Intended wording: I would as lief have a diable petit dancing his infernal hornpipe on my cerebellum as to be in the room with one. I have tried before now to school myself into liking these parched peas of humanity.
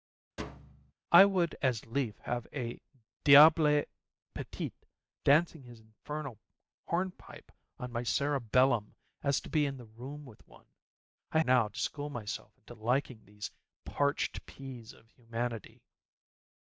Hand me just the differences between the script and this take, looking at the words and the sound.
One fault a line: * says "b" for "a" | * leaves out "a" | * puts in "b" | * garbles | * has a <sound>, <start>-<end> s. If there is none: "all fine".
* has a thud, 0.4-0.9 s
* leaves out "have tried before"